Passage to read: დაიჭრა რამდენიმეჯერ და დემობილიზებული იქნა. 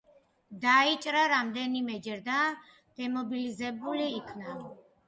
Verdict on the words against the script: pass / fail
pass